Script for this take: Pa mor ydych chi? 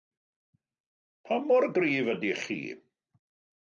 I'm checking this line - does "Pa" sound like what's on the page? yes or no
yes